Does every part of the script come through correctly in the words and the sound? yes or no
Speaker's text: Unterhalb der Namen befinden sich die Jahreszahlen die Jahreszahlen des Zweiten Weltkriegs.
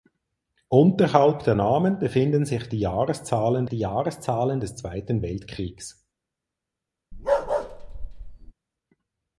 no